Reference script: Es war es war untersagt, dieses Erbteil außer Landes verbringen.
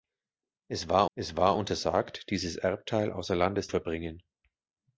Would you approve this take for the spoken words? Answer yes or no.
yes